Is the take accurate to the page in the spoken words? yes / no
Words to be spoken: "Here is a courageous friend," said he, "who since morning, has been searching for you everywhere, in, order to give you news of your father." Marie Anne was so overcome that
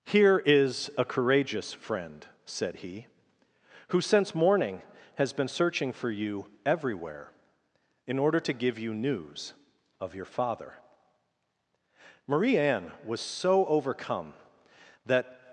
yes